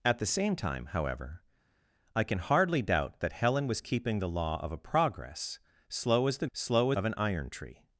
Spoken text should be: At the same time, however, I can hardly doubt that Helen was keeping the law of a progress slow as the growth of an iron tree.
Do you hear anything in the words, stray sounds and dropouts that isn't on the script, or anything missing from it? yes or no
yes